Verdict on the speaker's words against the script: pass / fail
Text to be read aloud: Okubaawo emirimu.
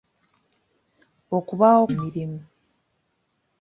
pass